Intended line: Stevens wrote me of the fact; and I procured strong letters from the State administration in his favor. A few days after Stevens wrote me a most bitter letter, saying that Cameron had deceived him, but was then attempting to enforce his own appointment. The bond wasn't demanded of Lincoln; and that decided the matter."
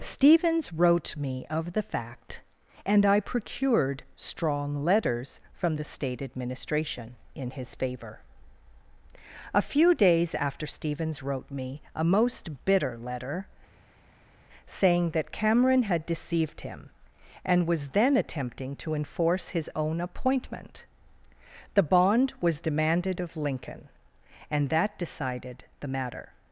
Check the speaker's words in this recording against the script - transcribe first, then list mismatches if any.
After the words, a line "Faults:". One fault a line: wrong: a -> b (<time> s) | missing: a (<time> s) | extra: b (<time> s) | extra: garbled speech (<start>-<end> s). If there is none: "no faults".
Stevens wrote me of the fact; and I procured strong letters from the State administration in his favor. A few days after Stevens wrote me a most bitter letter, saying that Cameron had deceived him, and was then attempting to enforce his own appointment. The bond was demanded of Lincoln; and that decided the matter."
Faults:
wrong: but -> and (17.4 s)
wrong: wasn't -> was (22.4 s)